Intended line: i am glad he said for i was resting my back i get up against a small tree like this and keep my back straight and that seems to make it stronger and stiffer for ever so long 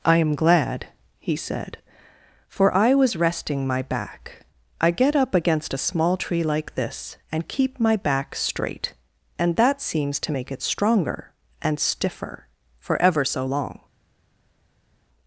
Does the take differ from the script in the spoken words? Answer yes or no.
no